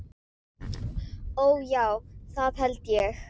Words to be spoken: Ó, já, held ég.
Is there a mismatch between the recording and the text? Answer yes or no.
yes